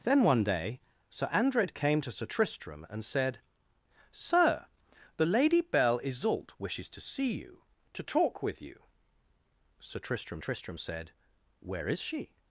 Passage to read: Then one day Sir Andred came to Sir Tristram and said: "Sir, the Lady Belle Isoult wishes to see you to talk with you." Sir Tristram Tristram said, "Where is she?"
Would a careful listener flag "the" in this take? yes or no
no